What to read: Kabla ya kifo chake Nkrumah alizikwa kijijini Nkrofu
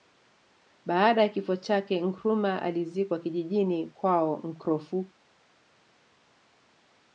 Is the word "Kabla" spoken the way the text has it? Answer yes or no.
no